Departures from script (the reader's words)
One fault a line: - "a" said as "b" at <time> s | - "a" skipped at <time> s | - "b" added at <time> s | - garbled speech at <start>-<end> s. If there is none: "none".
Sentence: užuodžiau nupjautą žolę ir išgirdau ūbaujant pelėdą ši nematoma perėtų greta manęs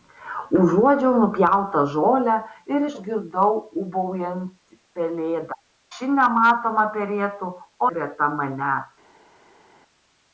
none